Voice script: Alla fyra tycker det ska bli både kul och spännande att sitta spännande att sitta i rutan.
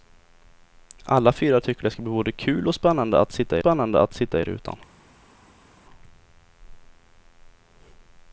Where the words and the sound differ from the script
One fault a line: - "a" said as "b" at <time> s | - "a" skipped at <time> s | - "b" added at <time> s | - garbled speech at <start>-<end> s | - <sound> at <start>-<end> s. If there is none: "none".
none